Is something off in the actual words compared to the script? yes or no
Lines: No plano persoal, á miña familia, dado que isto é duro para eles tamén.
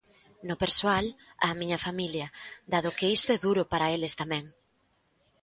yes